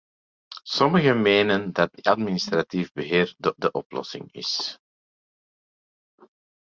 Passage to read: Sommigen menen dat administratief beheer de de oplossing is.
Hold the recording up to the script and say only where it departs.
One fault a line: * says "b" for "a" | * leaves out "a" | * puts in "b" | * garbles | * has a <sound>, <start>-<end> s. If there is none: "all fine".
all fine